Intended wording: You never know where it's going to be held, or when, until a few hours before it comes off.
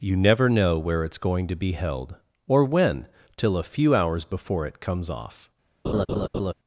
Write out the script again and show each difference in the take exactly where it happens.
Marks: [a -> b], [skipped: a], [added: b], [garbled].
You never know where it's going to be held, or when, [until -> till] a few hours before it comes off.